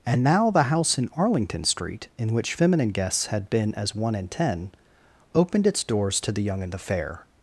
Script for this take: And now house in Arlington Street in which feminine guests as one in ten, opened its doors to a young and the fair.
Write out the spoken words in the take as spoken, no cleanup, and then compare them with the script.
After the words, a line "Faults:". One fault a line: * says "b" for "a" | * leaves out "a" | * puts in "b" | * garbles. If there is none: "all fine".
And now the house in Arlington Street in which feminine guests had been as one in ten, opened its doors to the young and the fair.
Faults:
* puts in "the"
* puts in "had been"
* says "the" for "a"